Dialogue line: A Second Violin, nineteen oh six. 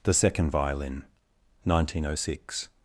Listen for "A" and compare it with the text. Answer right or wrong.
wrong